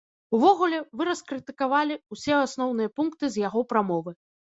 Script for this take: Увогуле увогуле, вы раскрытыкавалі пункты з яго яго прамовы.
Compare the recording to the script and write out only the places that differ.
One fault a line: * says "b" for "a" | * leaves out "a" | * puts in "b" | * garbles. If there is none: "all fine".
* leaves out "увогуле"
* puts in "ўсе асноўныя"
* leaves out "яго"